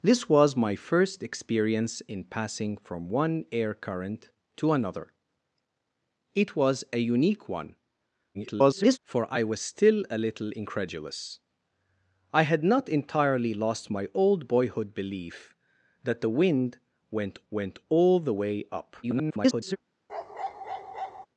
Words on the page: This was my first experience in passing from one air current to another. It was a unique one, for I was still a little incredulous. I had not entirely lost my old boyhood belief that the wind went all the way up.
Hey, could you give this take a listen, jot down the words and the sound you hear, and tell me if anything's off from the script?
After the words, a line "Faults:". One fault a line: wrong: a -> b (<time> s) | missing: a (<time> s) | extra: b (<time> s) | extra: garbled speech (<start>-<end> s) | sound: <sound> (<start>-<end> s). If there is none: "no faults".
This was my first experience in passing from one air current to another. It was a unique one, [garbled] for I was still a little incredulous. I had not entirely lost my old boyhood belief that the wind went went all the way up. [garbled]
Faults:
extra: garbled speech (8.3-9.0 s)
extra: went (17.5 s)
extra: garbled speech (19.0-19.8 s)
sound: bark (20.1-21.3 s)